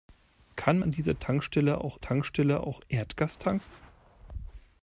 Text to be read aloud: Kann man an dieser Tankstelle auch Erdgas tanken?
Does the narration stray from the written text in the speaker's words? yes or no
yes